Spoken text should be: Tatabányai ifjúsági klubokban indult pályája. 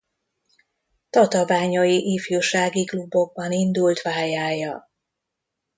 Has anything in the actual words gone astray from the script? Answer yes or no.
no